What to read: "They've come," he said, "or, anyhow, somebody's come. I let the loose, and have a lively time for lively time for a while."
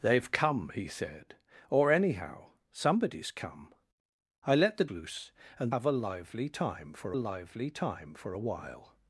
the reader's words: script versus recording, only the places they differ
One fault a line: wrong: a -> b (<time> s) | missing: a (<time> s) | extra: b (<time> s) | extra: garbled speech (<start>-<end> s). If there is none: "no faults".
no faults